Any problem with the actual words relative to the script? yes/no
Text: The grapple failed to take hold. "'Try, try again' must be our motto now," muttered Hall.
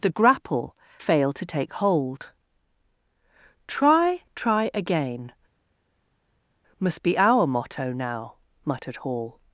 no